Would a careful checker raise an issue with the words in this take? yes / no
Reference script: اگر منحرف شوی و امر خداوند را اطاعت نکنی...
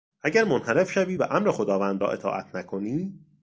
no